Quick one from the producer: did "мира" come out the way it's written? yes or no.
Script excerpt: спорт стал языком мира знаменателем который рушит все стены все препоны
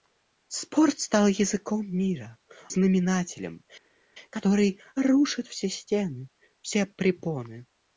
yes